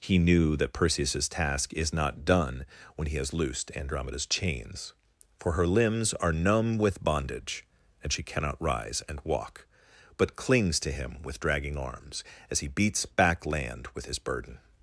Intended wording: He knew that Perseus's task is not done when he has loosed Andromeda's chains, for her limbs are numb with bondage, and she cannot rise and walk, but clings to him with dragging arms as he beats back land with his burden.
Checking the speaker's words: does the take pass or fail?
pass